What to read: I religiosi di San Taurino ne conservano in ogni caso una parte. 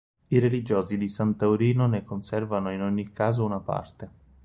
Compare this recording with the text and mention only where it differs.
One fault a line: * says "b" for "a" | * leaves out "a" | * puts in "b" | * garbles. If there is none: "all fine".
all fine